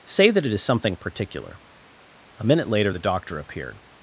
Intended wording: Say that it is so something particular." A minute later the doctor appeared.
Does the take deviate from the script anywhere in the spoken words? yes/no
yes